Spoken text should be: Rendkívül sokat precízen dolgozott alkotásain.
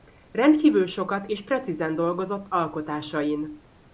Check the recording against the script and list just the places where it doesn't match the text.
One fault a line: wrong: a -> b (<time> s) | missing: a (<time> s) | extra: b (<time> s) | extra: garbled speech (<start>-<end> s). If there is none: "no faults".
extra: és (1.3 s)